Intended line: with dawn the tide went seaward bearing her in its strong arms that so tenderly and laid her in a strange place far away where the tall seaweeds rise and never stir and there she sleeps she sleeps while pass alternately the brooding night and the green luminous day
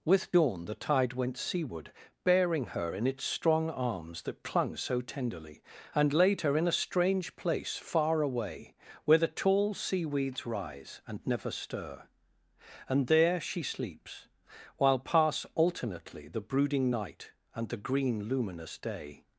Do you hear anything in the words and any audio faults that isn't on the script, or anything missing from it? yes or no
yes